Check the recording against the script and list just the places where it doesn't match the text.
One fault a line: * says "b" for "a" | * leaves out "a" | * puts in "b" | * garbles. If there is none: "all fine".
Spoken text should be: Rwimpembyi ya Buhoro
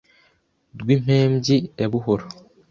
all fine